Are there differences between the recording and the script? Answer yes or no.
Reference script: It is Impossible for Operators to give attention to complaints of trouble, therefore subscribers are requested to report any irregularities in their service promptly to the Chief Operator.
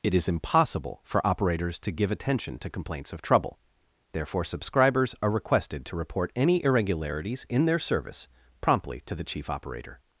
no